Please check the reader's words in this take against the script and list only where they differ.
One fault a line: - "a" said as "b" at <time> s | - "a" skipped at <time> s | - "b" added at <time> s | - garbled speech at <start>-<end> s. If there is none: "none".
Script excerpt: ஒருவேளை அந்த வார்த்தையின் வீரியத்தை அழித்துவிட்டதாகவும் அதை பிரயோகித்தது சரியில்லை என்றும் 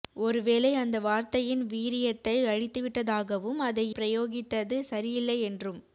none